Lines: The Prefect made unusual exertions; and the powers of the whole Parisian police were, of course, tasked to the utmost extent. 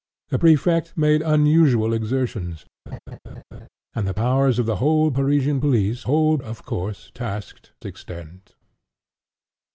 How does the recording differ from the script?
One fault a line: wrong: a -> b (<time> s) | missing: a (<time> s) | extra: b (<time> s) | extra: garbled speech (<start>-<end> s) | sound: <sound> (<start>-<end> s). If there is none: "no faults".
sound: laugh (2.9-3.7 s)
wrong: were -> whole (6.0 s)
missing: to the utmost (7.7 s)